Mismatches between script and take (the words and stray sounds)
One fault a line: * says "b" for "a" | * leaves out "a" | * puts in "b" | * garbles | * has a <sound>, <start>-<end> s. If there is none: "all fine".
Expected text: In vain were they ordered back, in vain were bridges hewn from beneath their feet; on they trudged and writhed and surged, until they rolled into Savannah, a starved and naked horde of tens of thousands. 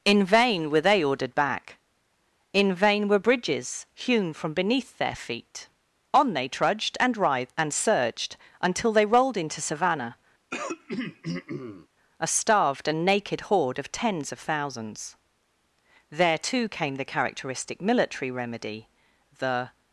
* has a throat clearing, 10.5-11.9 s
* puts in "There too came the characteristic military remedy The"